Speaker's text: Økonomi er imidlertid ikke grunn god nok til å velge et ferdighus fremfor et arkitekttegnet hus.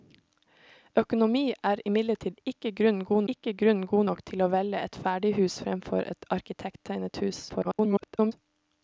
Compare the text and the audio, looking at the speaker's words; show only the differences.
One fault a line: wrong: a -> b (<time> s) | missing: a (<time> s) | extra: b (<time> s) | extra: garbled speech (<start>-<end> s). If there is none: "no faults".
extra: ikke grunn god (3.3 s)
extra: garbled speech (7.5-8.3 s)